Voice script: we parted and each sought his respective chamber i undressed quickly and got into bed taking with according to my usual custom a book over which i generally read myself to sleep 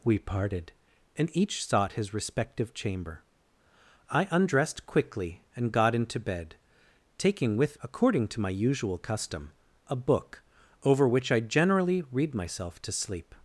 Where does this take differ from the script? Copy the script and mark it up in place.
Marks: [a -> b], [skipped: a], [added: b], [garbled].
we parted and each sought his respective chamber i undressed quickly and got into bed taking with according to my usual custom a book over which i generally read myself to sleep